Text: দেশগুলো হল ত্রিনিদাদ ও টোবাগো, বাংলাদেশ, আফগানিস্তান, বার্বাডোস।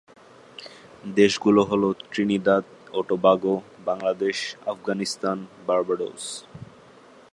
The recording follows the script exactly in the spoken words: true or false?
true